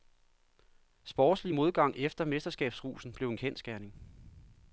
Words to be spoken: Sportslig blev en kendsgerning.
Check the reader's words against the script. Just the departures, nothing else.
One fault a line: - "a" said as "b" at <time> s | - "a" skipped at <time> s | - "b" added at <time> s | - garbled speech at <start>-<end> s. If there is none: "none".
- "modgang efter mesterskabsrusen" added at 1.5 s